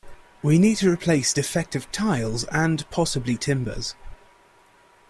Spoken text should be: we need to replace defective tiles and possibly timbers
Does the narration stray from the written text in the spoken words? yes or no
no